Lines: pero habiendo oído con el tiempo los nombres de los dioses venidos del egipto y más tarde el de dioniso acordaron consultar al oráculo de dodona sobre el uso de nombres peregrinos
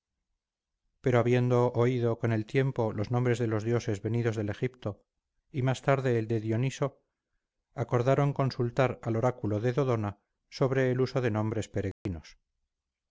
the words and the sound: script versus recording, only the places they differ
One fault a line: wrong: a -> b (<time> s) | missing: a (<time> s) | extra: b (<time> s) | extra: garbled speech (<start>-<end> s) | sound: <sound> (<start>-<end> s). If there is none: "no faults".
sound: dropout (11.9-12.1 s)